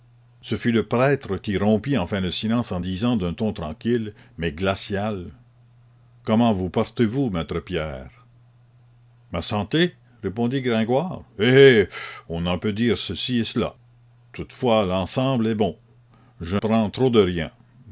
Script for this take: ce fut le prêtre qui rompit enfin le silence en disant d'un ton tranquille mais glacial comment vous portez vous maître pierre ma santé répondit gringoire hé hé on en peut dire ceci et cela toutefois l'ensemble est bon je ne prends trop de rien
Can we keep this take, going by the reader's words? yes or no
no